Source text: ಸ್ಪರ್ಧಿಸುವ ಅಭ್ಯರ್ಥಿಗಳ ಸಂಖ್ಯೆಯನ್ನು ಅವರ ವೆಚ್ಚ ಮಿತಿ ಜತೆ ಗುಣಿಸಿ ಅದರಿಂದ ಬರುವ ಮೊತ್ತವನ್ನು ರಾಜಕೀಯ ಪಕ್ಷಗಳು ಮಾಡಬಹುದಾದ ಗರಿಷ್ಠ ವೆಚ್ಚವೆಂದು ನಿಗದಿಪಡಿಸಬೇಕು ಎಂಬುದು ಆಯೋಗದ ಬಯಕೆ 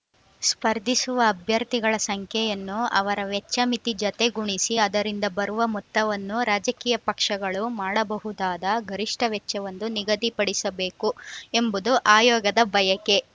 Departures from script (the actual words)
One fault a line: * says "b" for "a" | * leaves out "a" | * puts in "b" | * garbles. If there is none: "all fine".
all fine